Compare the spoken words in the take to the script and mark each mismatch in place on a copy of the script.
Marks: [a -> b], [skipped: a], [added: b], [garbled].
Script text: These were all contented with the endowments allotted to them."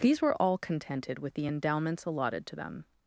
These were all contented with the endowments allotted to them."